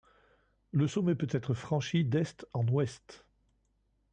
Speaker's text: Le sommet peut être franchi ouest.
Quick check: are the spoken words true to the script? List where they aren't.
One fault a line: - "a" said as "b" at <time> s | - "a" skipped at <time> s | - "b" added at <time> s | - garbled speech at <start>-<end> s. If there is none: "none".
- "d'est en" added at 2.1 s